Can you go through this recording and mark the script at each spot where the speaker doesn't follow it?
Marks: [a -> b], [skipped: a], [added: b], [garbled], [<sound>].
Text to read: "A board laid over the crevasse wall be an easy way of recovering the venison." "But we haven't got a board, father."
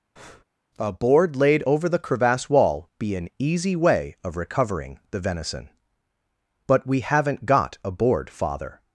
[breath] "A board laid over the crevasse wall be an easy way of recovering the venison." "But we haven't got a board, father."